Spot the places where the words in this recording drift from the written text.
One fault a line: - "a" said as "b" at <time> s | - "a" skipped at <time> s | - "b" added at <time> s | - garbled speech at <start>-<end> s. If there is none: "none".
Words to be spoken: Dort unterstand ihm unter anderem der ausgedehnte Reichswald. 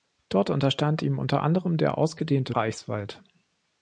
none